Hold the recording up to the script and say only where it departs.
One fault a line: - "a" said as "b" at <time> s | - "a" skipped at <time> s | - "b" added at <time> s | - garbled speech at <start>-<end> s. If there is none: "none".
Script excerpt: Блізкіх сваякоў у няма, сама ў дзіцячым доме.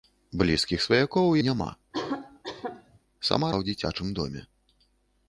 none